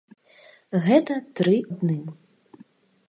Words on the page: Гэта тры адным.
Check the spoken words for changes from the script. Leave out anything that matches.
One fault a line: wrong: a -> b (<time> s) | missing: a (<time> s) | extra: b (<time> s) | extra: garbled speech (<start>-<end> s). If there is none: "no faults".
no faults